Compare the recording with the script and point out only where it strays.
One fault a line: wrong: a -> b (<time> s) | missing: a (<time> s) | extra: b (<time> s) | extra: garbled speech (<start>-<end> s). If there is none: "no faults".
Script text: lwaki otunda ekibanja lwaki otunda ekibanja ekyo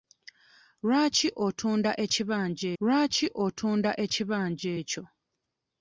no faults